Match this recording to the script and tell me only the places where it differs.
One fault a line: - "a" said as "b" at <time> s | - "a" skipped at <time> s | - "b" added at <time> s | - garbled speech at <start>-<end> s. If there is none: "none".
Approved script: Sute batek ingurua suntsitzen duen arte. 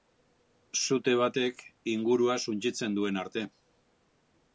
none